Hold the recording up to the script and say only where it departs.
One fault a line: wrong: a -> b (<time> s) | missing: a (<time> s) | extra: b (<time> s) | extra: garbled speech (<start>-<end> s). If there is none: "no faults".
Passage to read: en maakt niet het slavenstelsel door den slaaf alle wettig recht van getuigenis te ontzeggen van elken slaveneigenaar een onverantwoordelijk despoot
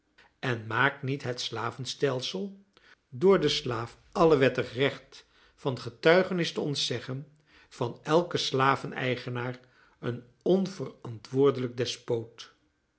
no faults